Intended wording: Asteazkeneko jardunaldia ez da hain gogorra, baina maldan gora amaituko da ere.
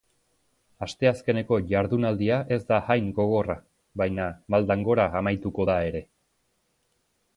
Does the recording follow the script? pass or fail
pass